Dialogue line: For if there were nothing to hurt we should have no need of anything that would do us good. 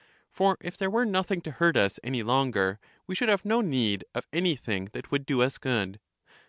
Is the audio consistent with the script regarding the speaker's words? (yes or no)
no